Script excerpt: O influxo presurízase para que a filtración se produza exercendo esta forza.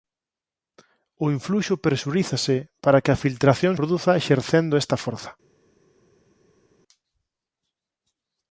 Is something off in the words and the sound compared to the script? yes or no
yes